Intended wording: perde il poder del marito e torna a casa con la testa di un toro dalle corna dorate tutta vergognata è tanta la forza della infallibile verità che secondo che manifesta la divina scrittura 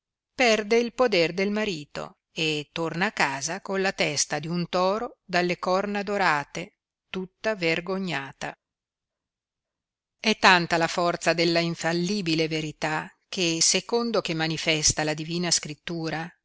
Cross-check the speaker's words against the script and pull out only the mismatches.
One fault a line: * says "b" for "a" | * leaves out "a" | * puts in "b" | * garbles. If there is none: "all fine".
all fine